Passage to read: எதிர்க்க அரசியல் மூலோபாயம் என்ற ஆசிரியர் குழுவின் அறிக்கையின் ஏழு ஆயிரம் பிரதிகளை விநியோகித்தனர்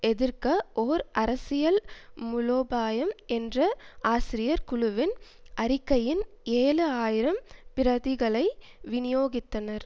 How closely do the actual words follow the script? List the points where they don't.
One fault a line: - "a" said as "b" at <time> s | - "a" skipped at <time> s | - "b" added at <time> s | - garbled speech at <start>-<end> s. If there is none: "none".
- "ஓர்" added at 0.8 s